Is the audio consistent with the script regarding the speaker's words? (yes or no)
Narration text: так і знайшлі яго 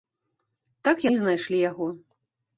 yes